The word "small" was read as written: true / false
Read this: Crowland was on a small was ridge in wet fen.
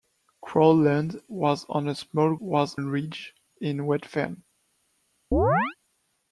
true